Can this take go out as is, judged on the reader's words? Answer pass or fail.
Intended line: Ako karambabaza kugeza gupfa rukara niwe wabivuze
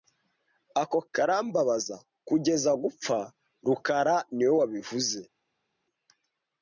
pass